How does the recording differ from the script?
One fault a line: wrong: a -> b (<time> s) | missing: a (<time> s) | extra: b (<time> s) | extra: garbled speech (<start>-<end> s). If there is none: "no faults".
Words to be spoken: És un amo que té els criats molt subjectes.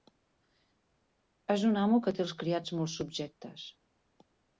no faults